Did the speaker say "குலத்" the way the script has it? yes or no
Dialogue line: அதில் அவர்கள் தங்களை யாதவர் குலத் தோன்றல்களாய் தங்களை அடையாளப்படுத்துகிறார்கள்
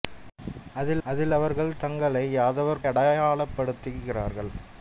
no